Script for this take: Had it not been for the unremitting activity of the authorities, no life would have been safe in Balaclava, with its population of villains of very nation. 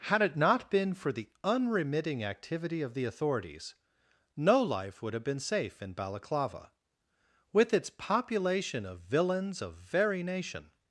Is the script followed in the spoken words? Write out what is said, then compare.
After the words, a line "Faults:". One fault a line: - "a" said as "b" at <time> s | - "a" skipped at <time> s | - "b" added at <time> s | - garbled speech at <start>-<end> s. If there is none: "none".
Had it not been for the unremitting activity of the authorities, no life would have been safe in Balaclava, with its population of villains of very nation.
Faults:
none